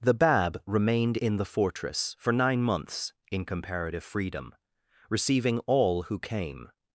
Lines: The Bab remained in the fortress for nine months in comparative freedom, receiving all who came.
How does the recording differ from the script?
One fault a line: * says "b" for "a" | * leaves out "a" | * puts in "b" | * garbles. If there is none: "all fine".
all fine